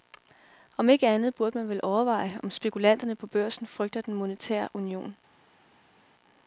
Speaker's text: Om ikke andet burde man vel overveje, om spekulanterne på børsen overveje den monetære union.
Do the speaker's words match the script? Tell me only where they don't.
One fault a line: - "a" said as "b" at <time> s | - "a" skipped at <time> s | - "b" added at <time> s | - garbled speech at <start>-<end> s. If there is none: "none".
- "overveje" said as "frygter" at 3.7 s